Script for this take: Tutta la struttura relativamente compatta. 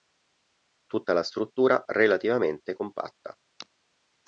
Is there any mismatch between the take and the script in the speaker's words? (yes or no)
no